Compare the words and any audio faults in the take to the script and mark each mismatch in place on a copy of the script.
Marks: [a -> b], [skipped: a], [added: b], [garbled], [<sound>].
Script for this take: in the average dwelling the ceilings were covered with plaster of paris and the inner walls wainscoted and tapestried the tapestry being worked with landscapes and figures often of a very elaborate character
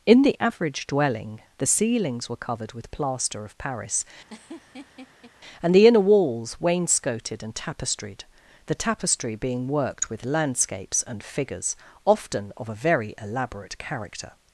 in the average dwelling the ceilings were covered with plaster of paris [laugh] and the inner walls wainscoted and tapestried the tapestry being worked with landscapes and figures often of a very elaborate character